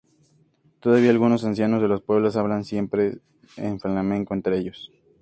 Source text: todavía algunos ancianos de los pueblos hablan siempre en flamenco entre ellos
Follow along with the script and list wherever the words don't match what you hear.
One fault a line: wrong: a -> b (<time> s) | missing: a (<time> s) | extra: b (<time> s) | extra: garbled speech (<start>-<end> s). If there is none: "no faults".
no faults